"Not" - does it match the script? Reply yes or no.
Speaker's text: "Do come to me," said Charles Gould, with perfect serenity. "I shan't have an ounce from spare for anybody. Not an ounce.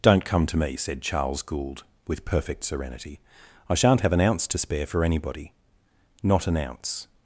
yes